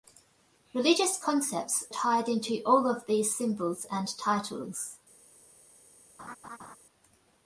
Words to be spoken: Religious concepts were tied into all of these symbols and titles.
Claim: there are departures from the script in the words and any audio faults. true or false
true